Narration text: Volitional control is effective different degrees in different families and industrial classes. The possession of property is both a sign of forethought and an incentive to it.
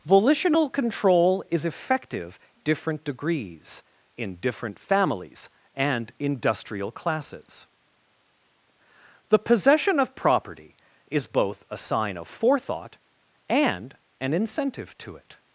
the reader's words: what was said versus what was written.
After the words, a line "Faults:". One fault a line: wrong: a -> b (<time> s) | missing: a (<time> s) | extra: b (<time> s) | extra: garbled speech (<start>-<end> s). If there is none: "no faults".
Volitional control is effective different degrees in different families and industrial classes. The possession of property is both a sign of forethought and an incentive to it.
Faults:
no faults